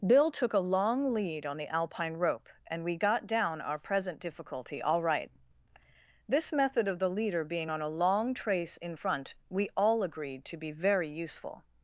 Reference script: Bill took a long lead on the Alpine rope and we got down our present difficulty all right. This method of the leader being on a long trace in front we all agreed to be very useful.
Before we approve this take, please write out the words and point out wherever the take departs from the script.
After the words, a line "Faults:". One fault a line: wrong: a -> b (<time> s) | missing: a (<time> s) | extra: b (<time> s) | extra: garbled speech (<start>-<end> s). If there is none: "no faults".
Bill took a long lead on the Alpine rope and we got down our present difficulty all right. This method of the leader being on a long trace in front we all agreed to be very useful.
Faults:
no faults